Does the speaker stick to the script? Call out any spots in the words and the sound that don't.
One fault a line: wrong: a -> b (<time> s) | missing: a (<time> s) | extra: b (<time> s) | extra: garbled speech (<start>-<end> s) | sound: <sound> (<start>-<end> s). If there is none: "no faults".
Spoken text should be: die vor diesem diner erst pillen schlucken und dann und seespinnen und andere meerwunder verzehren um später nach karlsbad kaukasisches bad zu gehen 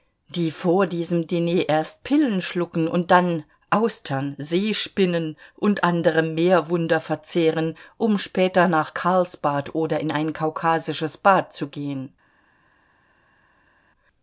wrong: und -> austern (3.7 s)
extra: oder in ein (9.8 s)